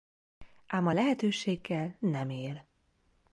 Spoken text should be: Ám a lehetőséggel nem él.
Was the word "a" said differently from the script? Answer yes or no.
no